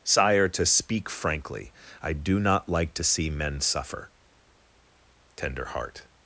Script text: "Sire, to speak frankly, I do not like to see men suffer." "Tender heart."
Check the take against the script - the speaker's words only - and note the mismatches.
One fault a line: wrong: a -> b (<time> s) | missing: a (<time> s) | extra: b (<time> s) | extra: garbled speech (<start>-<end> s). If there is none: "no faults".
no faults